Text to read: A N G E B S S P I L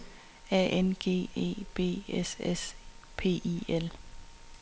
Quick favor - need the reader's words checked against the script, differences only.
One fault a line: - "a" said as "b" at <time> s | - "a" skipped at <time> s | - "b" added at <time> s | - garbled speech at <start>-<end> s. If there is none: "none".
none